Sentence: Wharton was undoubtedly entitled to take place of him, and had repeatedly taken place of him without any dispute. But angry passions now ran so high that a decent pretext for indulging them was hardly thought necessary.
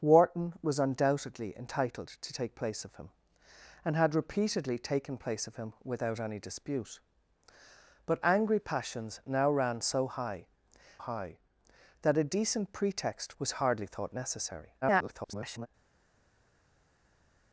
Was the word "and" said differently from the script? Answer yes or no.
no